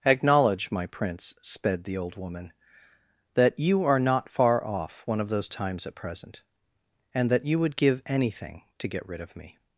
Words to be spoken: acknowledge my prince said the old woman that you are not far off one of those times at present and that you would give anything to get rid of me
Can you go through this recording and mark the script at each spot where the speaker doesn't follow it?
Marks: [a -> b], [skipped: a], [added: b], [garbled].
acknowledge my prince [said -> sped] the old woman that you are not far off one of those times at present and that you would give anything to get rid of me